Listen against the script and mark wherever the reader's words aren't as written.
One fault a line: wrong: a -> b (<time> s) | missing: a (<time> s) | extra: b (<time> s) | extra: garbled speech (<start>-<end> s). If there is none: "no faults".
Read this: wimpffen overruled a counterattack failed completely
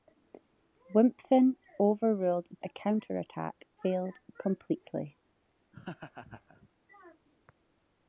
no faults